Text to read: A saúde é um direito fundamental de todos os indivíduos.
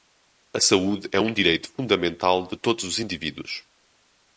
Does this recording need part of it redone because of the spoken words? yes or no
no